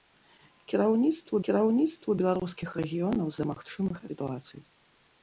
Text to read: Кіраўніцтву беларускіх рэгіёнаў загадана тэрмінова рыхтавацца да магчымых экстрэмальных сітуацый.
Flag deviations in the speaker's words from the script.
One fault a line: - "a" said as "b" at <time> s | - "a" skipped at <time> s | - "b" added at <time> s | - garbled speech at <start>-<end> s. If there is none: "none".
- "кіраўніцтву" added at 1.5 s
- "загадана тэрмінова рыхтавацца" skipped at 3.3 s
- "экстрэмальных" skipped at 4.0 s